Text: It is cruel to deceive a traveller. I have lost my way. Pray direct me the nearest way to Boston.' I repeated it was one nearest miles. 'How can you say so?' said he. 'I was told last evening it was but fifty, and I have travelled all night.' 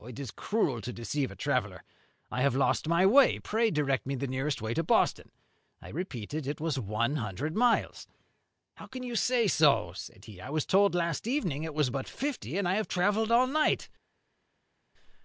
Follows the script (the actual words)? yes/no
no